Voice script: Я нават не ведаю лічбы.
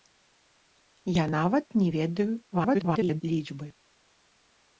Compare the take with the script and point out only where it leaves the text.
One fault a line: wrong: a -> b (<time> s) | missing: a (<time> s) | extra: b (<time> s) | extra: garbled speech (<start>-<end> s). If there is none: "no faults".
extra: garbled speech (2.5-3.2 s)